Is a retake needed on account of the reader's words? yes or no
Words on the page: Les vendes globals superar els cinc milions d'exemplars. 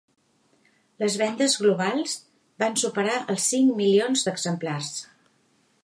yes